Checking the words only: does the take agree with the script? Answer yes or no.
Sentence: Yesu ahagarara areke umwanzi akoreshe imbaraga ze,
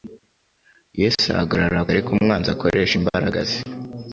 yes